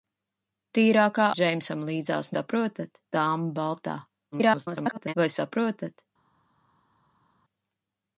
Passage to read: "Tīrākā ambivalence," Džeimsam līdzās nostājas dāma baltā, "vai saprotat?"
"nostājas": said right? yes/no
no